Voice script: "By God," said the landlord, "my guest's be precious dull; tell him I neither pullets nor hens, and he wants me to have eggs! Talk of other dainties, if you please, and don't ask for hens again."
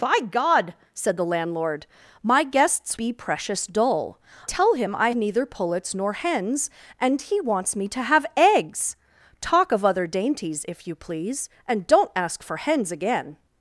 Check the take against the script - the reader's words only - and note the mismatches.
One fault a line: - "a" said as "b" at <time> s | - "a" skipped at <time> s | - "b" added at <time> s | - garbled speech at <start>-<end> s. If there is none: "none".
none